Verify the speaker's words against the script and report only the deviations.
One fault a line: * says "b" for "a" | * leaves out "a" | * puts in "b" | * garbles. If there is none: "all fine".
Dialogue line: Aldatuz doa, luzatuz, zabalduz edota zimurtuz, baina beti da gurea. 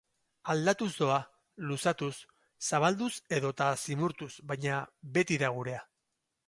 all fine